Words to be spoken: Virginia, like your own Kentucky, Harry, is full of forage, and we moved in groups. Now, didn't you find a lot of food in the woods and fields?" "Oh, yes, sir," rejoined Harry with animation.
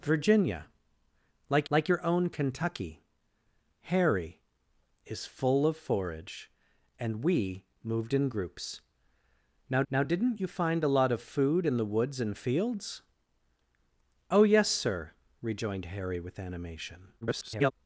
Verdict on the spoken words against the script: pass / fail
fail